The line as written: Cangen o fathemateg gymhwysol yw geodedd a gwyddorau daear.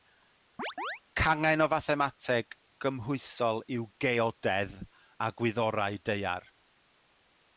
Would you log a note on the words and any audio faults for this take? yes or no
yes